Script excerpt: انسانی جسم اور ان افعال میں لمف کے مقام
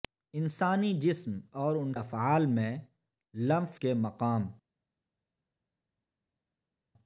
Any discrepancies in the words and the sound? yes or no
no